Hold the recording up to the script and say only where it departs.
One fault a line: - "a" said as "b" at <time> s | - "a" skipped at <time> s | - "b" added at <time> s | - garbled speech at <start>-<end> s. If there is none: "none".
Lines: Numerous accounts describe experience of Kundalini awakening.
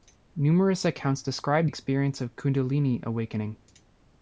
none